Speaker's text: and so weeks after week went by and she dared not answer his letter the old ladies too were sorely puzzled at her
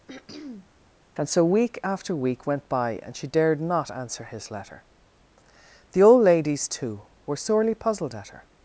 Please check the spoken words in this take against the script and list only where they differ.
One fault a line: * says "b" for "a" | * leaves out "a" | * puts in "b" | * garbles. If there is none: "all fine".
* says "week" for "weeks"